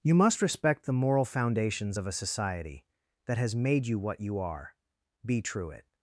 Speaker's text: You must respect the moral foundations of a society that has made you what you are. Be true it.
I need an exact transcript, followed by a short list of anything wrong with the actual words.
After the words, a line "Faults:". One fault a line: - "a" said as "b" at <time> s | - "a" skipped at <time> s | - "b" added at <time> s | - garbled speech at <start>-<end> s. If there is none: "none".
You must respect the moral foundations of a society that has made you what you are. Be true it.
Faults:
none